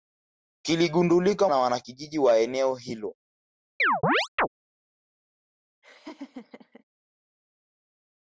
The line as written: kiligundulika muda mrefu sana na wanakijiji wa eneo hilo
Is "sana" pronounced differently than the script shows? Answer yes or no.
yes